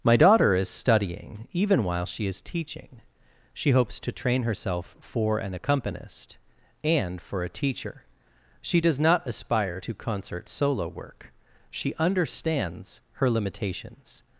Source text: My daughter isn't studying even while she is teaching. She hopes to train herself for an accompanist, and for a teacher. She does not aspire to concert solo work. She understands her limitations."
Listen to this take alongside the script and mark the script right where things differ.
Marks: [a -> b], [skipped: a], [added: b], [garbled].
My daughter [isn't -> is] studying even while she is teaching. She hopes to train herself for an accompanist, and for a teacher. She does not aspire to concert solo work. She understands her limitations."